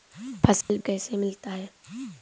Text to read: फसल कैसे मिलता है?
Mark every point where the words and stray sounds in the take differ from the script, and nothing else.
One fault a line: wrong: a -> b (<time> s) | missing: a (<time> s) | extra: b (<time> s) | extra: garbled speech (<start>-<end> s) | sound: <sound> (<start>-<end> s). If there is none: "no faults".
sound: dropout (0.6-0.7 s)